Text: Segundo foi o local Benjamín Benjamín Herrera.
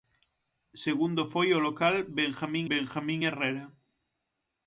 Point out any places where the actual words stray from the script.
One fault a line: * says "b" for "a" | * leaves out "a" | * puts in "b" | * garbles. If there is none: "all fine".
all fine